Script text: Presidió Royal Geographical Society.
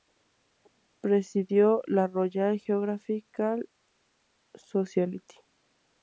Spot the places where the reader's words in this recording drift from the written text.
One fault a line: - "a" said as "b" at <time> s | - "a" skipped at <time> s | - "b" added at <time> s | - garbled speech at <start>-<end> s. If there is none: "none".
- "la" added at 1.9 s